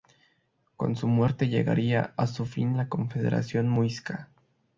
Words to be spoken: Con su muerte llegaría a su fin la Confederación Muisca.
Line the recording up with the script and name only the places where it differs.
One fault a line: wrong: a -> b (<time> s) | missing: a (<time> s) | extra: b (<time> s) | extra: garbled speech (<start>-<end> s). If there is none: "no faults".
no faults